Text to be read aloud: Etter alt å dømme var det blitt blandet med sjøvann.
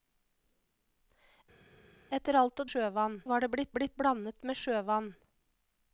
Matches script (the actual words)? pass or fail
fail